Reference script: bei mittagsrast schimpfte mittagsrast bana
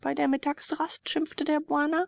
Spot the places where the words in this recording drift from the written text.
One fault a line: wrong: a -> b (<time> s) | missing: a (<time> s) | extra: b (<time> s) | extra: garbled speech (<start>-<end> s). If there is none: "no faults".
extra: der (0.1 s)
wrong: mittagsrast -> der (1.4 s)